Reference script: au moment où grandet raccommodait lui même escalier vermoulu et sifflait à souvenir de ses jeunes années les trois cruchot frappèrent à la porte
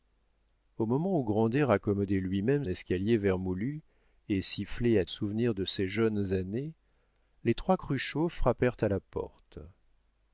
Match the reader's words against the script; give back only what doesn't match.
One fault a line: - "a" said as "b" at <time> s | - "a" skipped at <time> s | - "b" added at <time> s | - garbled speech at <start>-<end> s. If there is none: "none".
none